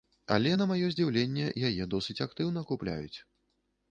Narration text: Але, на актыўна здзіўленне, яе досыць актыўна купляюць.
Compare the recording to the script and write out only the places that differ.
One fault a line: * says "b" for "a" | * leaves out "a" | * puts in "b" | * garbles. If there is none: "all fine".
* says "маё" for "актыўна"